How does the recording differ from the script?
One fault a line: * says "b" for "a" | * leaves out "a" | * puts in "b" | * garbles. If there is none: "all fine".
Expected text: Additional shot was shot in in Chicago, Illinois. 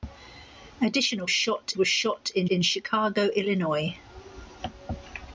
all fine